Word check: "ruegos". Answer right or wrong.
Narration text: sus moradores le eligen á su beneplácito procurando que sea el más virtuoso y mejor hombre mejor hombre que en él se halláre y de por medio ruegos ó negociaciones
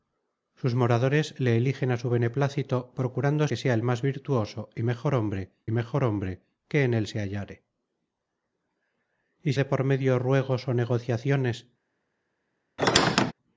right